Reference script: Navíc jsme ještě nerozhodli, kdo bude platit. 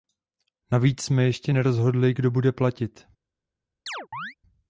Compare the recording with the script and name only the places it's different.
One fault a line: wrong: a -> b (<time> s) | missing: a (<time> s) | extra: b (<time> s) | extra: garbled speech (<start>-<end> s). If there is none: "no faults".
no faults